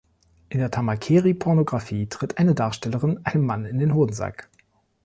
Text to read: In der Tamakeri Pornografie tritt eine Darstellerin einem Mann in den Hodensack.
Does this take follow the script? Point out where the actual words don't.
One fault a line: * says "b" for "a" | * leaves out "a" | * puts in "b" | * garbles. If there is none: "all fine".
all fine